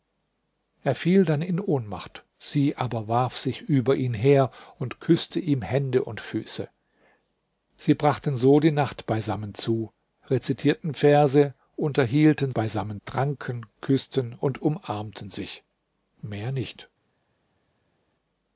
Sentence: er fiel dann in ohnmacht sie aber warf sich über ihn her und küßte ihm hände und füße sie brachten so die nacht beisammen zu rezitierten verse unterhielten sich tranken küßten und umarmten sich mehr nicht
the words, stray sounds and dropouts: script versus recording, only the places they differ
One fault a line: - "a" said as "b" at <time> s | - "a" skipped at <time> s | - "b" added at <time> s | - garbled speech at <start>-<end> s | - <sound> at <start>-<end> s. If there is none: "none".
- "sich" said as "beisammen" at 12.5 s